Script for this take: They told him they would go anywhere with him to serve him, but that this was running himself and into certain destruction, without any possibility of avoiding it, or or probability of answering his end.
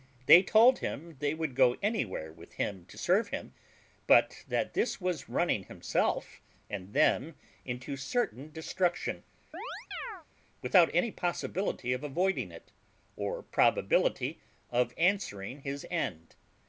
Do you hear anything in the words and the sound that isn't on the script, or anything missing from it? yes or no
yes